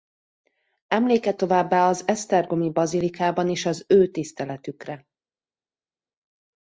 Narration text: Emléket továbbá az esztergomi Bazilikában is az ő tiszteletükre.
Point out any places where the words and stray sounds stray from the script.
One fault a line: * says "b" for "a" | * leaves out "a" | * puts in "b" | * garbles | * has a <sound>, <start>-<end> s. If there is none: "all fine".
all fine